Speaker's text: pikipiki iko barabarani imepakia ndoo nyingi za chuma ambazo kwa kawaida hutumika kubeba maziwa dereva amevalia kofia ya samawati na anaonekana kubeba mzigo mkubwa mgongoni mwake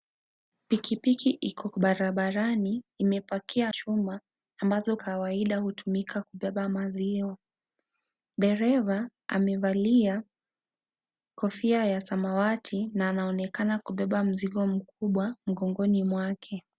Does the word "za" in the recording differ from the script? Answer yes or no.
yes